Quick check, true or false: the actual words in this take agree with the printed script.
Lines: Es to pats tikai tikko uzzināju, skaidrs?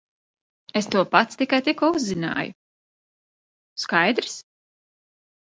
true